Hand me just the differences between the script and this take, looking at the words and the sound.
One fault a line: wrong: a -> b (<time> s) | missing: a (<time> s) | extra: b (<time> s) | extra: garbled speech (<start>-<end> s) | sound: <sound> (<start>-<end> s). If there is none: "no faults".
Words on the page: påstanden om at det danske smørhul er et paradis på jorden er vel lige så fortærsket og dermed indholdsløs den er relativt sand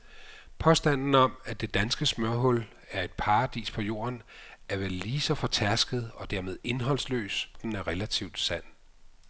no faults